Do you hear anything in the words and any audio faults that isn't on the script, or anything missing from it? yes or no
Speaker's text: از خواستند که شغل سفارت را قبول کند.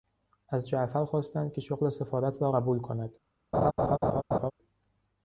yes